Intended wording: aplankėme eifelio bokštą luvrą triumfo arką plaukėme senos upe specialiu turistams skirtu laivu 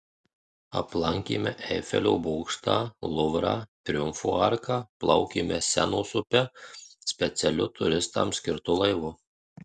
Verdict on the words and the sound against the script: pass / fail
pass